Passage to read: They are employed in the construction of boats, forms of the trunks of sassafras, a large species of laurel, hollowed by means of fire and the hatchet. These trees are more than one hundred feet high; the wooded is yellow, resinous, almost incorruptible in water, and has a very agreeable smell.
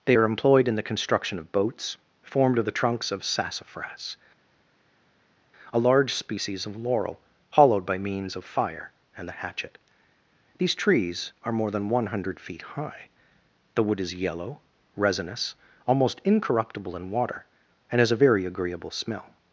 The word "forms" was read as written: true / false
false